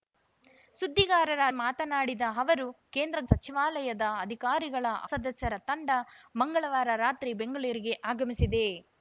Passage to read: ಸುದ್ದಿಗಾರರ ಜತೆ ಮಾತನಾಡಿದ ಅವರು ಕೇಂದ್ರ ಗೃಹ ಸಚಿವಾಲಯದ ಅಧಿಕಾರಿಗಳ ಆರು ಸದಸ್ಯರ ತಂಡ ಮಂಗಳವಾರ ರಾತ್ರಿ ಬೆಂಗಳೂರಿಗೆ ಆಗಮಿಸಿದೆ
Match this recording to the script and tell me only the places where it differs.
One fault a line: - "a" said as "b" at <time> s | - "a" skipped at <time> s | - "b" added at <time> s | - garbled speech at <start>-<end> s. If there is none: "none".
- "ಜತೆ" skipped at 1.4 s
- "ಗೃಹ" skipped at 3.2 s
- "ಆರು" skipped at 4.8 s